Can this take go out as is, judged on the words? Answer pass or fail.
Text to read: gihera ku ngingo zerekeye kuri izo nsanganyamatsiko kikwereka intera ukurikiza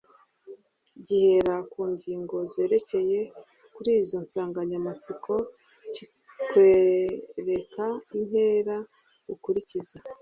pass